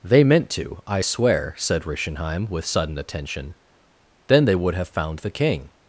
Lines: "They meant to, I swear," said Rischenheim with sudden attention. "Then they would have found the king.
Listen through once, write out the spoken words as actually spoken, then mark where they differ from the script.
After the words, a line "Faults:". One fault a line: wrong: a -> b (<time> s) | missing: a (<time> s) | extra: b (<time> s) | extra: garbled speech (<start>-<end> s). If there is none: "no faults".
"They meant to, I swear," said Rischenheim with sudden attention. "Then they would have found the king.
Faults:
no faults